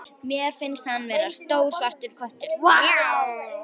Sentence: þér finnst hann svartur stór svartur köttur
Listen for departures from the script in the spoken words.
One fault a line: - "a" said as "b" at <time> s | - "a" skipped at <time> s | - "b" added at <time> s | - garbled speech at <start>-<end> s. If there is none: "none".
- "þér" said as "mér" at 0.3 s
- "svartur" said as "vera" at 1.1 s